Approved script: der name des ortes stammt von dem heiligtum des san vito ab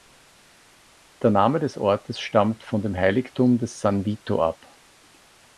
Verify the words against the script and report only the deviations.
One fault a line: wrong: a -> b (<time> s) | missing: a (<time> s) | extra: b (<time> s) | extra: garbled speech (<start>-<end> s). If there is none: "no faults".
no faults